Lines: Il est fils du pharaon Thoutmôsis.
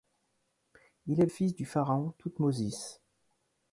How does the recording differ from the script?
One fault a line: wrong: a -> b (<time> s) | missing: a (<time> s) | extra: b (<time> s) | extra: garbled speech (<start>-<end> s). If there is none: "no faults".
no faults